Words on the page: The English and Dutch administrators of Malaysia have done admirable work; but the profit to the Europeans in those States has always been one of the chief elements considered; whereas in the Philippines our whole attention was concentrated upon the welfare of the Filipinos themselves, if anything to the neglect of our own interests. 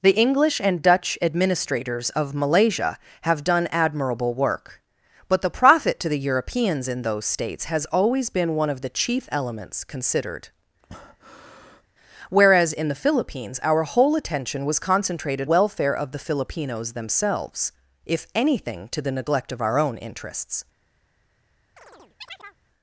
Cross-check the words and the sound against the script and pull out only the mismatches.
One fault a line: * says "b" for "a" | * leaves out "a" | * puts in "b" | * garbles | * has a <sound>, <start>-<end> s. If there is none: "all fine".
* has a breath, 10.8-11.9 s
* leaves out "upon the"
* has a chirp, 21.8-22.6 s